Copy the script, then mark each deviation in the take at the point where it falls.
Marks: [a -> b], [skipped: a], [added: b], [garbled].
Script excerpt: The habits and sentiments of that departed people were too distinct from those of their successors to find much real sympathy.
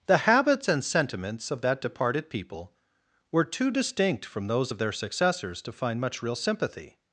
The habits and sentiments of that departed people were too distinct from those of their successors to find much real sympathy.